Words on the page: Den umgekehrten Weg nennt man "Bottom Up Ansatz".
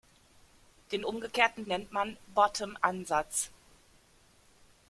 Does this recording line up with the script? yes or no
no